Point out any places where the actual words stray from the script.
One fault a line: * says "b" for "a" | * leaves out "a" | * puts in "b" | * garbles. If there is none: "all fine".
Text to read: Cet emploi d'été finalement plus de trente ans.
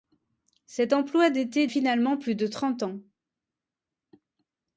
all fine